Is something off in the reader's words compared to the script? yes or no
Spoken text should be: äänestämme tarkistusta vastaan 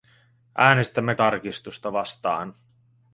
no